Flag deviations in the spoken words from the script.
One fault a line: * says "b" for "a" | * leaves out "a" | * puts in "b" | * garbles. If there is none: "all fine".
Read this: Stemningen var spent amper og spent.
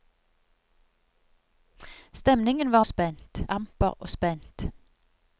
all fine